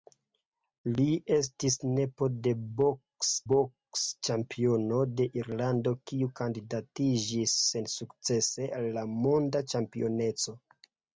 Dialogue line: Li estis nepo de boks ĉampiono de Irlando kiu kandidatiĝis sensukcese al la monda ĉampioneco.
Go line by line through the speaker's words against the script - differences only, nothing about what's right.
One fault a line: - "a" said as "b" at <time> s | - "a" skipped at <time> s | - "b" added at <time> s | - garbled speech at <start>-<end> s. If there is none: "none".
- "boks" added at 3.5 s